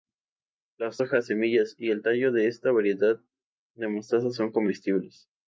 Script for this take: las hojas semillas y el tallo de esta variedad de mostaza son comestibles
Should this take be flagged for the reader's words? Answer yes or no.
no